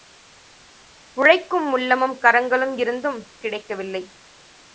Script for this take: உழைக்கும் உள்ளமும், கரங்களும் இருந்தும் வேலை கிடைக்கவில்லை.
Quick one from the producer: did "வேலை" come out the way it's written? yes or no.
no